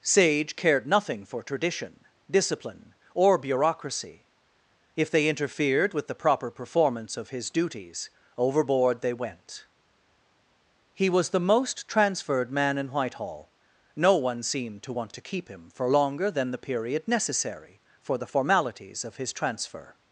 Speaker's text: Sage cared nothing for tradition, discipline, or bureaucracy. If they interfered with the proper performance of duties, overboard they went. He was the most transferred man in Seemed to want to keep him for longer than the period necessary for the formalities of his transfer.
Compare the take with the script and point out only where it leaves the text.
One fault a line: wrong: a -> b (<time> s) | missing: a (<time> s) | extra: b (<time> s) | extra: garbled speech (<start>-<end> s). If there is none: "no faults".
extra: his (7.3 s)
extra: Whitehall No one (12.9 s)